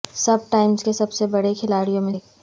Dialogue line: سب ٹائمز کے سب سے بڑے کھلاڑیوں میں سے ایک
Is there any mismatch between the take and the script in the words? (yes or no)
yes